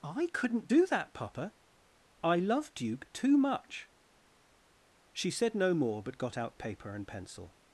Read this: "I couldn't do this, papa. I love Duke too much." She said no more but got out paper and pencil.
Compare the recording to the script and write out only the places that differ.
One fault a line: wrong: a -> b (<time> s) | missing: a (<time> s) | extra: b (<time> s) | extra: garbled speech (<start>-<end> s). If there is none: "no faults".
wrong: this -> that (0.9 s)